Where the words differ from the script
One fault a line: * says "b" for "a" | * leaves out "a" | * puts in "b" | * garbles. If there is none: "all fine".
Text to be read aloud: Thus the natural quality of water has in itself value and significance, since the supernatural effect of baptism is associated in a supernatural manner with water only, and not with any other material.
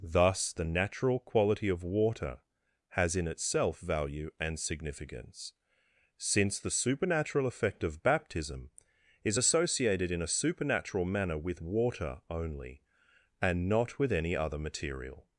all fine